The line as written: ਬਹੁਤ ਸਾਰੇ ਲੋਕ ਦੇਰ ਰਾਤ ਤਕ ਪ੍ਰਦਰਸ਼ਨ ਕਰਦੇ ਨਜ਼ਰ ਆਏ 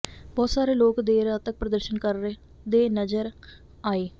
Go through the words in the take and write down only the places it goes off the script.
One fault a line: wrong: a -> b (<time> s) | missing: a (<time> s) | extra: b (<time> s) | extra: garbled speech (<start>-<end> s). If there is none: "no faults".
no faults